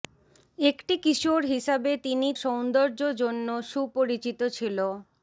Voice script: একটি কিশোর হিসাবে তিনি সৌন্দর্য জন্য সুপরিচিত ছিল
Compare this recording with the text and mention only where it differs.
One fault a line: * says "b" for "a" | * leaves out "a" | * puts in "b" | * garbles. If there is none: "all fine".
all fine